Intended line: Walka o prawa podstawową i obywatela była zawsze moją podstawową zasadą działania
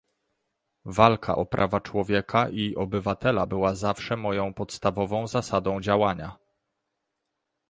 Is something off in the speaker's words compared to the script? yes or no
yes